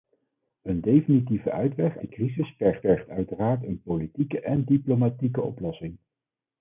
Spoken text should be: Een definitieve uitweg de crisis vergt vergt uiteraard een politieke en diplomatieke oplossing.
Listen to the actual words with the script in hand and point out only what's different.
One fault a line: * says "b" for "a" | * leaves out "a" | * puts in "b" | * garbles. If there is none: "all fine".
all fine